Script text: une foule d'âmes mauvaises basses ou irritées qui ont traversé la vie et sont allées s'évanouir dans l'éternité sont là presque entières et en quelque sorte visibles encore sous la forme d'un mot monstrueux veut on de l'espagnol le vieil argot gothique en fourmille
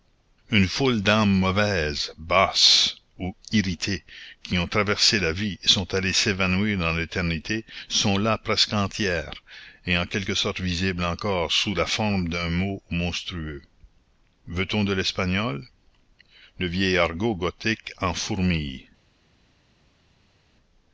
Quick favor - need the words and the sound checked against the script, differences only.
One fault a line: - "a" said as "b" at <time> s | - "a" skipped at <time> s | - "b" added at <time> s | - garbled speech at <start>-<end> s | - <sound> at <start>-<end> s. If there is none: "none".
none